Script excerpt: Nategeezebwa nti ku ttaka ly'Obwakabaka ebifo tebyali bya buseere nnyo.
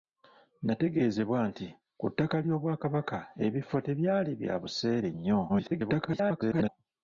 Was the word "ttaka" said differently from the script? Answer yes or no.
no